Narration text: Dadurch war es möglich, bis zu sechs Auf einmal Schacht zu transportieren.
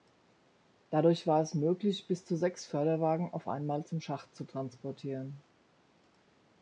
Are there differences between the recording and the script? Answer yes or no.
yes